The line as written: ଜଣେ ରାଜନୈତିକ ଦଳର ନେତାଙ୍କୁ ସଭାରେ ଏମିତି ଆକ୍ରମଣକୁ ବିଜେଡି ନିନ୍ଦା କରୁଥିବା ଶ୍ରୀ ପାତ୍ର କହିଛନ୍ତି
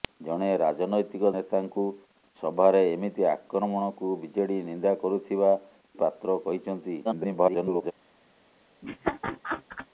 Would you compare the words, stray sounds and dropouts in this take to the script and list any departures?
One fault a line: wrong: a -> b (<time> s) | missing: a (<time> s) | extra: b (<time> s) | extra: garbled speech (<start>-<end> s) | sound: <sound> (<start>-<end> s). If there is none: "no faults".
missing: ଦଳର (1.3 s)
missing: ଶ୍ରୀ (5.5 s)
extra: garbled speech (7.0-7.9 s)
sound: laugh (8.8-9.9 s)